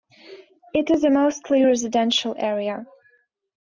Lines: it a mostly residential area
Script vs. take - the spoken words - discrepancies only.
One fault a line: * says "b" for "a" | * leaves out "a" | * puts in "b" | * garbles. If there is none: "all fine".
* puts in "is"